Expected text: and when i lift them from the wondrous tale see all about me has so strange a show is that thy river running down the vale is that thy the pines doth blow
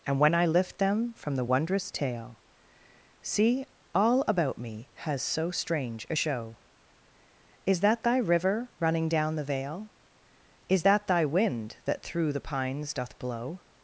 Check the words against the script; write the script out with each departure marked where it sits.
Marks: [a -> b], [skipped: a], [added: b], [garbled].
and when i lift them from the wondrous tale see all about me has so strange a show is that thy river running down the vale is that thy [added: wind that through] the pines doth blow